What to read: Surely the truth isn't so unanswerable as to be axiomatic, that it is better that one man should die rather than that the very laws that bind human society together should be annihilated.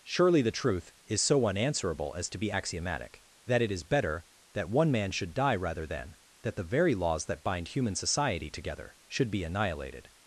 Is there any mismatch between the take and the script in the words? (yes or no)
yes